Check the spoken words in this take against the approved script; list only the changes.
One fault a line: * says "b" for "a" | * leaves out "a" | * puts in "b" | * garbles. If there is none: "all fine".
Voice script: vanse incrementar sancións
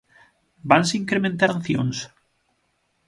all fine